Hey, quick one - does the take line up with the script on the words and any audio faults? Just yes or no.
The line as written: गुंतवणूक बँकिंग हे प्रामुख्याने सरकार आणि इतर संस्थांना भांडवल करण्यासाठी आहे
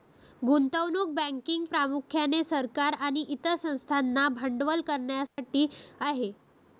no